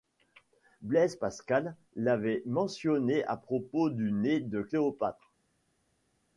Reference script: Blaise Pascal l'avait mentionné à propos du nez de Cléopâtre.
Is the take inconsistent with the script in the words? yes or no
no